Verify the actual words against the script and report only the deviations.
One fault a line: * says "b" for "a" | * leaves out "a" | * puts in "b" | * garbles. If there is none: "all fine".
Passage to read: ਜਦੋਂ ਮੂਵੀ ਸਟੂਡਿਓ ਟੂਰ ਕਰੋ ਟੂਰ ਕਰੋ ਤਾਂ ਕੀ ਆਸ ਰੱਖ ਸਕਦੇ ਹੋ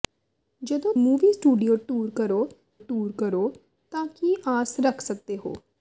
all fine